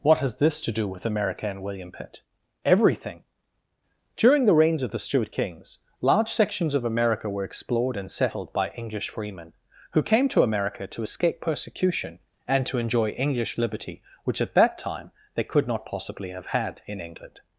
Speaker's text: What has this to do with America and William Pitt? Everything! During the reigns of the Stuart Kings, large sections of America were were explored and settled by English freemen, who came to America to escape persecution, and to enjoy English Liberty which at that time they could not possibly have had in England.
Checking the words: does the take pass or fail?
fail